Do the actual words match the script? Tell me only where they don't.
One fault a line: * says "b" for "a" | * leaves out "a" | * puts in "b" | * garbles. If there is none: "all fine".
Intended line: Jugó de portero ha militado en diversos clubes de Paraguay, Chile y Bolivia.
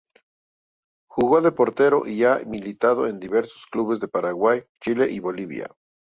* puts in "y"